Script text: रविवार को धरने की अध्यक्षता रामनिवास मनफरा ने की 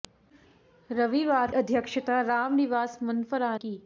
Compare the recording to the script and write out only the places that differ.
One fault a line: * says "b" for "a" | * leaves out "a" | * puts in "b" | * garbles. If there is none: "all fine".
* leaves out "को धरने की"
* leaves out "ने"